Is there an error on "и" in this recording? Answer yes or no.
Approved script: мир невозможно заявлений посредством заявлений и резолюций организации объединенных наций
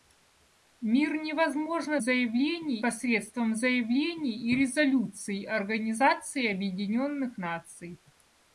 no